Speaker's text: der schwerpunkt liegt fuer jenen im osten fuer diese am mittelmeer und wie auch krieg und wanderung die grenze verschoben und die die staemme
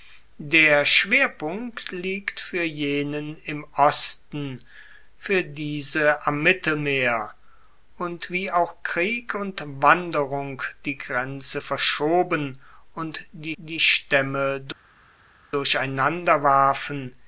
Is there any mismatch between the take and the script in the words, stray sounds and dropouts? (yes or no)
no